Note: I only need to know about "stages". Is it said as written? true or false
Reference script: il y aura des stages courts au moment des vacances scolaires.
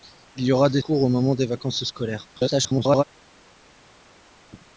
false